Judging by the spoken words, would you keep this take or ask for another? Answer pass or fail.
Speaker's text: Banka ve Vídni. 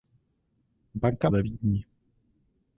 pass